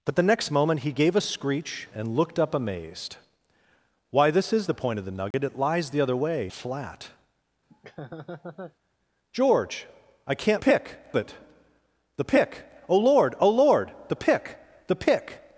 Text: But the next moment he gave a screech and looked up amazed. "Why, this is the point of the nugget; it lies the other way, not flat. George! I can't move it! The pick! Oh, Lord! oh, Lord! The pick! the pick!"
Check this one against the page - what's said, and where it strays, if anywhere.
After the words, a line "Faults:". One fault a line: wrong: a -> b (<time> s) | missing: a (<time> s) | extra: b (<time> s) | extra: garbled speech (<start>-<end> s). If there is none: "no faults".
But the next moment he gave a screech and looked up amazed. "Why, this is the point of the nugget; it lies the other way, flat. George! I can't pick it! The pick! Oh, Lord! oh, Lord! The pick! the pick!"
Faults:
missing: not (6.5 s)
wrong: move -> pick (10.6 s)